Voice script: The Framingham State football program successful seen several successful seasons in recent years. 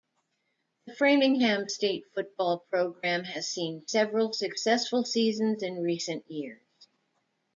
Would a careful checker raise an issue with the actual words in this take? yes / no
yes